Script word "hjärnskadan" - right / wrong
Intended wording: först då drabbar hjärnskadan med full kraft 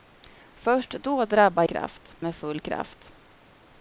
wrong